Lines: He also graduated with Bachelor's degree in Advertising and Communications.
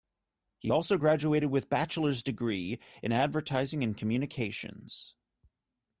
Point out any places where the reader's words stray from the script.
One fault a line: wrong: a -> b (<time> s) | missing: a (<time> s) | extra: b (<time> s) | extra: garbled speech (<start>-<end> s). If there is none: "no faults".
no faults